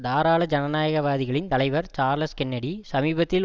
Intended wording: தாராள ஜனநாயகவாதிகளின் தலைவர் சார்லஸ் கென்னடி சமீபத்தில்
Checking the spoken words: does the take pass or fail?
pass